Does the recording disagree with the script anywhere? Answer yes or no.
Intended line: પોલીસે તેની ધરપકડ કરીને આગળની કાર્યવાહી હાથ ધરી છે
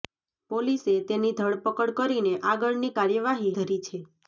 yes